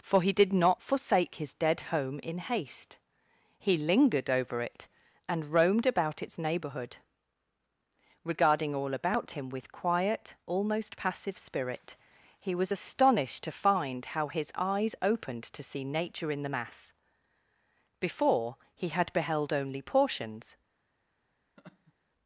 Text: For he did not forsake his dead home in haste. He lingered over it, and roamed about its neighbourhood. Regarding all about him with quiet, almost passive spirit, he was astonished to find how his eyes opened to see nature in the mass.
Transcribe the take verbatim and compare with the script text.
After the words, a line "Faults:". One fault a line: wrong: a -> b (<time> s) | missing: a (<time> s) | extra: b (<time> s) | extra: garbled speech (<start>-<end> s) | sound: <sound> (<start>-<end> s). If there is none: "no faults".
For he did not forsake his dead home in haste. He lingered over it, and roamed about its neighbourhood. Regarding all about him with quiet, almost passive spirit, he was astonished to find how his eyes opened to see nature in the mass. Before, he had beheld only portions
Faults:
extra: Before he had beheld only portions (18.0 s)
sound: laugh (21.6-21.9 s)